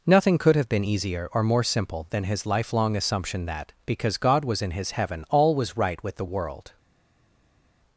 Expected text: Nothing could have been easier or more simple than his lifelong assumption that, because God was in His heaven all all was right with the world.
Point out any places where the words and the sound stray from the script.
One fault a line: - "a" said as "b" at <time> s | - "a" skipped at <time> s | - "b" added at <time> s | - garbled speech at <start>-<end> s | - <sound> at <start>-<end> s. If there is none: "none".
- "all" skipped at 5.6 s